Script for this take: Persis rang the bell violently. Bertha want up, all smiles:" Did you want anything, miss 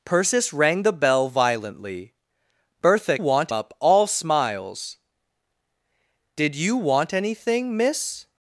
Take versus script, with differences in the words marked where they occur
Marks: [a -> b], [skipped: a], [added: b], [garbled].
Persis rang the bell violently. Bertha want up, all smiles:" Did you want anything, miss